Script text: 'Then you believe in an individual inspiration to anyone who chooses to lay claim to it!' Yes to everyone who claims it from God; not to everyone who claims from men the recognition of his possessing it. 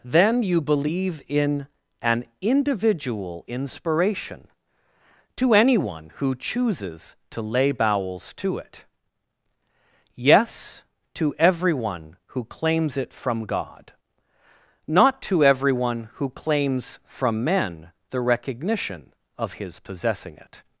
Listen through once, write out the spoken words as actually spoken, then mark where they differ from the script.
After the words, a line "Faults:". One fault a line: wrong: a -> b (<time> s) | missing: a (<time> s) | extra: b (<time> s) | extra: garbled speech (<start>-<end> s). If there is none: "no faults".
'Then you believe in an individual inspiration to anyone who chooses to lay bowels to it!' Yes to everyone who claims it from God; not to everyone who claims from men the recognition of his possessing it.
Faults:
wrong: claim -> bowels (7.7 s)